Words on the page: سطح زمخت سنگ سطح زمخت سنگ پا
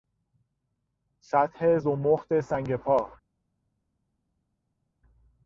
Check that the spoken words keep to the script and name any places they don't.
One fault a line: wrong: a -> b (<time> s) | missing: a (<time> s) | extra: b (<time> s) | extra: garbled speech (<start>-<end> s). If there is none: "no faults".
missing: سطح زمخت سنگ (2.8 s)